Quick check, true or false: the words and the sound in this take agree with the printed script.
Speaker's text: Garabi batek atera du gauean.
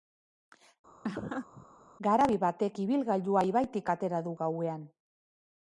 false